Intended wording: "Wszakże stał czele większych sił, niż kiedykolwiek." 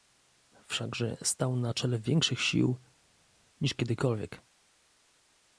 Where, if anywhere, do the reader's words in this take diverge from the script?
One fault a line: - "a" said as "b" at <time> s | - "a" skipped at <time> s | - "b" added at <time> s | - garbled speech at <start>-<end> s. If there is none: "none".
- "na" added at 1.6 s